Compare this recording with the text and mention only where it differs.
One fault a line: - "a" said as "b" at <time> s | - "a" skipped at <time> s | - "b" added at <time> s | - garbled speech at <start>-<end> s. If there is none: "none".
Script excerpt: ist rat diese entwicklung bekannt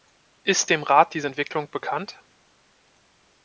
- "dem" added at 0.7 s